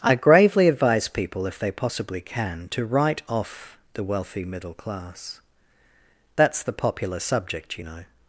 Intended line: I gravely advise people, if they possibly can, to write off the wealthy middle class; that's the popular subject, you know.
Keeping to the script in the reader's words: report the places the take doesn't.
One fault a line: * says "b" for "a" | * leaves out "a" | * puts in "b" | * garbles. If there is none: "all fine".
all fine